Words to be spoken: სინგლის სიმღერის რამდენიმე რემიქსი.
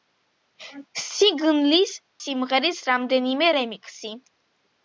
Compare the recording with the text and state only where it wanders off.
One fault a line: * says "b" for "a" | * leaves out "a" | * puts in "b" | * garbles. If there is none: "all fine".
all fine